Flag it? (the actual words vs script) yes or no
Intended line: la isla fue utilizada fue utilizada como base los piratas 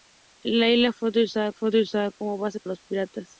no